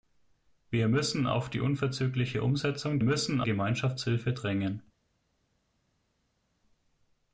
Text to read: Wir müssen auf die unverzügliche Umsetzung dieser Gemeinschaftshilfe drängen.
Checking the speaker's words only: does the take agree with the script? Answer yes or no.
no